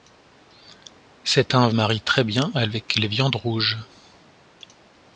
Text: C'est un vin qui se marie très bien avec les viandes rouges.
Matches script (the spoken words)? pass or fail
fail